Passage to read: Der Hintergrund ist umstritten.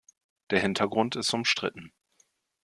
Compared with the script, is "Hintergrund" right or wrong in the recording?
right